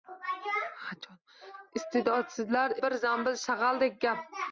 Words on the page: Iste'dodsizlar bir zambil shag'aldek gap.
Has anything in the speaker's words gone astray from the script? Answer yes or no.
no